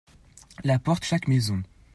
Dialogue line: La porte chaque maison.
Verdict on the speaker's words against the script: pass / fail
pass